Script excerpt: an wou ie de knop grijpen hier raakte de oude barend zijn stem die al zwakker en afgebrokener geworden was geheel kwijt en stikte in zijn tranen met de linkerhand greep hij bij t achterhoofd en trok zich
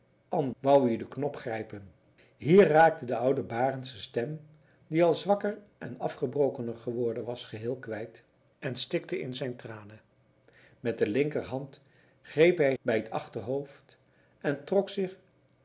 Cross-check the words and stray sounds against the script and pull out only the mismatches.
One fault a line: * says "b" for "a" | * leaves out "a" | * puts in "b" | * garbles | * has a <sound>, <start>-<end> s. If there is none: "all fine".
all fine